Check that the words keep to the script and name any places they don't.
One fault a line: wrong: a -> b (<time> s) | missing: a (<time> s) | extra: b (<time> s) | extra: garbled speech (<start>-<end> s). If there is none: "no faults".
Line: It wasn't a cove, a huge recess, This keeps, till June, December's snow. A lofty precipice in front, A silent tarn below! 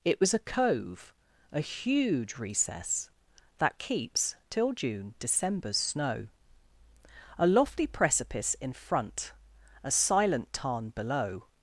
wrong: wasn't -> was (0.2 s)
wrong: This -> That (3.6 s)